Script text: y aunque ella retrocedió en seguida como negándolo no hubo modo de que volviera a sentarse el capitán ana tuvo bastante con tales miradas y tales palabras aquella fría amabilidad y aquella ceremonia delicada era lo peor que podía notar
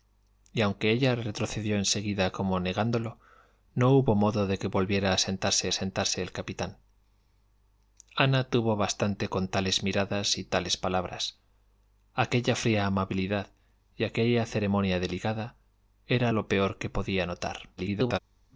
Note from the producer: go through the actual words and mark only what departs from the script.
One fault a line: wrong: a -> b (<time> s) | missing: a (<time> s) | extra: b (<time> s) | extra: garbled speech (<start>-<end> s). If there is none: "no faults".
extra: sentarse (5.7 s)
extra: garbled speech (17.8-18.2 s)